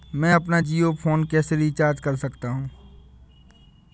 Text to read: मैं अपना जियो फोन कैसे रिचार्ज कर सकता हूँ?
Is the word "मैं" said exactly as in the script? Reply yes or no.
yes